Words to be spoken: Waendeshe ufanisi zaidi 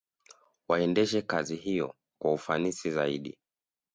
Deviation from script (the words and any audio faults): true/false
true